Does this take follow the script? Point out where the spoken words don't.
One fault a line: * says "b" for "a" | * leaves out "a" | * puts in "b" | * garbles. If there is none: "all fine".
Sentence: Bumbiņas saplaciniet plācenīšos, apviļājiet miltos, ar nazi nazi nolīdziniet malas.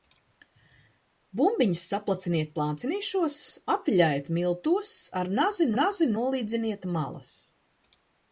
all fine